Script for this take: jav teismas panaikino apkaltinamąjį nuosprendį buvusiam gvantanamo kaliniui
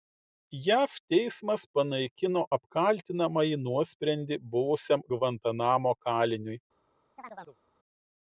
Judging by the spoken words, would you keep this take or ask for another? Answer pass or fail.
pass